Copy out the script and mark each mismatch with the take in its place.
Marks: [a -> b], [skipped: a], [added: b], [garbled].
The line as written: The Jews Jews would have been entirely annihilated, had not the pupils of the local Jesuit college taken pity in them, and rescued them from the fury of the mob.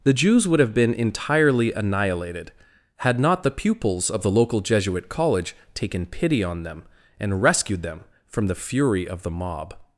The Jews [skipped: Jews] would have been entirely annihilated, had not the pupils of the local Jesuit college taken pity [in -> on] them, and rescued them from the fury of the mob.